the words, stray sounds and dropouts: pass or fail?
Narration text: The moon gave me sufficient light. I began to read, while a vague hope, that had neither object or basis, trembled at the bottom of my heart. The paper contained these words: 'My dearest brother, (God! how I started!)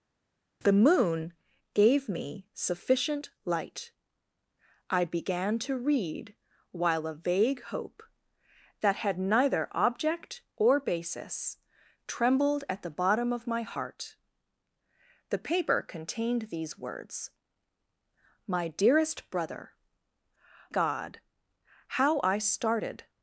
pass